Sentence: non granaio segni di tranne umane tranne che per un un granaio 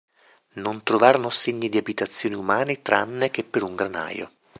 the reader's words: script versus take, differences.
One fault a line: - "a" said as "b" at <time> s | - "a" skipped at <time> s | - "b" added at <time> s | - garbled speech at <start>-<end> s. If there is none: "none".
- "granaio" said as "trovarono" at 0.8 s
- "tranne" said as "abitazioni" at 1.8 s
- "un" skipped at 3.8 s